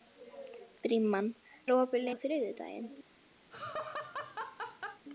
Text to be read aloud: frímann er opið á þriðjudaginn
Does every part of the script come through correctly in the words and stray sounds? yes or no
no